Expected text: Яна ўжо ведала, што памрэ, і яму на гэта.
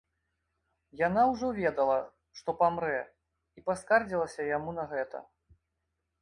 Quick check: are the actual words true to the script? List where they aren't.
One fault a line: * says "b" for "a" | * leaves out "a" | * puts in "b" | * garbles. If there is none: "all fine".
* puts in "паскардзілася"